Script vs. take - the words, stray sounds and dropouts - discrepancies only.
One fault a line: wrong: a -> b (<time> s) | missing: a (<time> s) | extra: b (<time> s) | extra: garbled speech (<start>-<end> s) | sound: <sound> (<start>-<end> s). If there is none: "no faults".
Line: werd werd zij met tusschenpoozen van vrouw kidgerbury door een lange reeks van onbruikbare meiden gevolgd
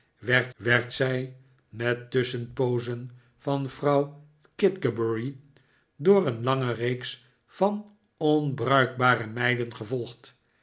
no faults